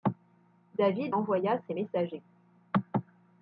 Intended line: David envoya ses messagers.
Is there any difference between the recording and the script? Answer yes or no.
no